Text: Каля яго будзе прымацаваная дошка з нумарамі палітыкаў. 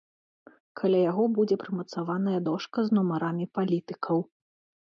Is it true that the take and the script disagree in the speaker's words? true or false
false